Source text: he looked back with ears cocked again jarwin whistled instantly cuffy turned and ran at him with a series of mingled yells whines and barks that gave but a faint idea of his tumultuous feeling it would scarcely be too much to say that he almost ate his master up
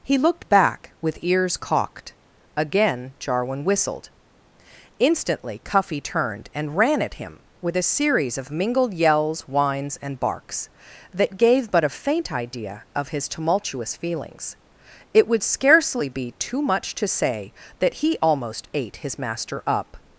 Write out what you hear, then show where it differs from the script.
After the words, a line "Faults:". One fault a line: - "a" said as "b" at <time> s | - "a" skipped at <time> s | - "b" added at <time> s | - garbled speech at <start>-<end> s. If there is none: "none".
he looked back with ears cocked again jarwin whistled instantly cuffy turned and ran at him with a series of mingled yells whines and barks that gave but a faint idea of his tumultuous feelings it would scarcely be too much to say that he almost ate his master up
Faults:
- "feeling" said as "feelings" at 14.0 s